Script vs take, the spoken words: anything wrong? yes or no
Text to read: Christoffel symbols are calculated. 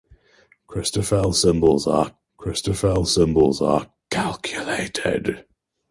yes